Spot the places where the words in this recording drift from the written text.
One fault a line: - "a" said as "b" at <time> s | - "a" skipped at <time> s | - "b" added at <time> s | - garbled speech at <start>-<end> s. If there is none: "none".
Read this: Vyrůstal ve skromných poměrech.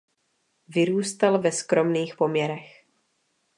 none